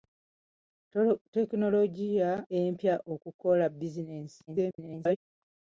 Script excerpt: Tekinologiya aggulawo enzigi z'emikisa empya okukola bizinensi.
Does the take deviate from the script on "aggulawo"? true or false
true